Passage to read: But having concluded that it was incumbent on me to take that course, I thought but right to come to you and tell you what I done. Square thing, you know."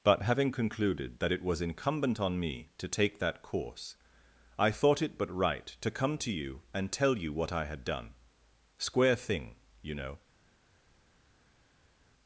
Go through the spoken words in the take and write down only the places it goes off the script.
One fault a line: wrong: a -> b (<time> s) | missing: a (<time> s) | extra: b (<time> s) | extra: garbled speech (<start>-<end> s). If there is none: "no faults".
extra: it (5.0 s)
extra: had (7.7 s)